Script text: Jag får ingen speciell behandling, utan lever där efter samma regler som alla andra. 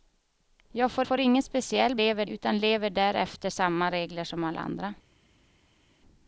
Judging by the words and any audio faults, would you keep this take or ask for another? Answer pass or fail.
fail